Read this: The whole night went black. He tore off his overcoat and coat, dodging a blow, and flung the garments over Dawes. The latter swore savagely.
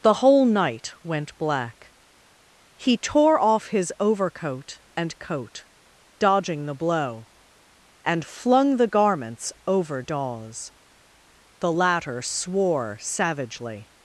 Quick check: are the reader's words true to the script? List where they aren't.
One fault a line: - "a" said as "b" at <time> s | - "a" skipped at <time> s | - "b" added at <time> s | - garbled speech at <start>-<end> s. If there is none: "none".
- "a" said as "the" at 6.7 s